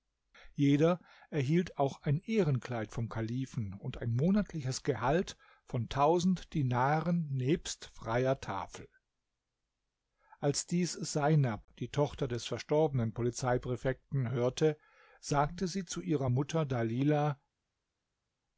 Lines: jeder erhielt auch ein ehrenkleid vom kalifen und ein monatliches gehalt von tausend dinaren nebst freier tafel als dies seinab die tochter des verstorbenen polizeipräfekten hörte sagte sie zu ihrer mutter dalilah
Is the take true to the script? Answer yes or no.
yes